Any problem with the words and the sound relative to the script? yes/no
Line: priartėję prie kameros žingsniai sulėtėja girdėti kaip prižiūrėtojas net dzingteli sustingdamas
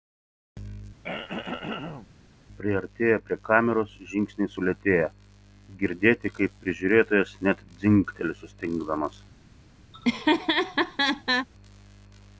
yes